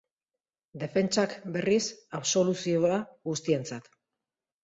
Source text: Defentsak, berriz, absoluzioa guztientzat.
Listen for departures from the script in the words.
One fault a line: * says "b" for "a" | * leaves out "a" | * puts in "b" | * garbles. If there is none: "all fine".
all fine